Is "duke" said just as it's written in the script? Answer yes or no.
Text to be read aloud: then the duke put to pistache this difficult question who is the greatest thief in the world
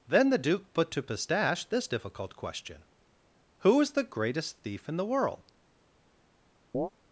yes